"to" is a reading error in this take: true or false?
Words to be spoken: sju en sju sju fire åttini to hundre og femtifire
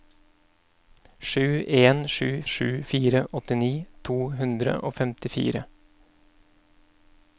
false